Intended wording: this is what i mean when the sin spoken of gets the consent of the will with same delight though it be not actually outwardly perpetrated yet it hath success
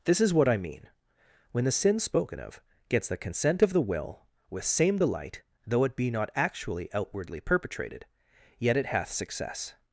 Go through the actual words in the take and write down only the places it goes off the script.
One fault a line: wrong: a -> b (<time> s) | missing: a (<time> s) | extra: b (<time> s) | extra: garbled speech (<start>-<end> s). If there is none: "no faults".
no faults